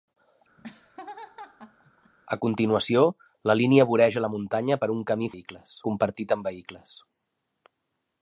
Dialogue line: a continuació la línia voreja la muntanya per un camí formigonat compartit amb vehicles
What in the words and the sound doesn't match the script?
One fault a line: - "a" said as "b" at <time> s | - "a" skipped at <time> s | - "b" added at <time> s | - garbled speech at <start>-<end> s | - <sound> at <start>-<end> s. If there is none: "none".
- laugh at 0.6-2.1 s
- "formigonat" said as "vehicles" at 5.3 s